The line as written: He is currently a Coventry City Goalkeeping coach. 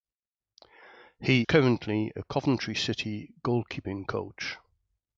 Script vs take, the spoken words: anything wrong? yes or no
yes